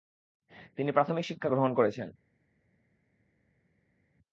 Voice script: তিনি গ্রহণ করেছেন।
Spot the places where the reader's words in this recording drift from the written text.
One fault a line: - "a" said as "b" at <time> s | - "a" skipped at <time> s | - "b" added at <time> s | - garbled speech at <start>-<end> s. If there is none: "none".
- "প্রাথমিক শিক্ষা" added at 0.9 s